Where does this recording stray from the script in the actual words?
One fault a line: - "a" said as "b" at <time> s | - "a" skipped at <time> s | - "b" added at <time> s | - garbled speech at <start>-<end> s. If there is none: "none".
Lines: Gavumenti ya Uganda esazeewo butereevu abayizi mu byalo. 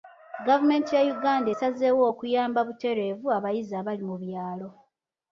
- "okuyamba" added at 2.1 s
- "abali" added at 3.8 s